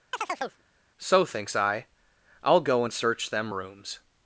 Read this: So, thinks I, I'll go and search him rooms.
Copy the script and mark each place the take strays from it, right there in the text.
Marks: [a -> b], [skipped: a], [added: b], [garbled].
So, thinks I, I'll go and search [him -> them] rooms.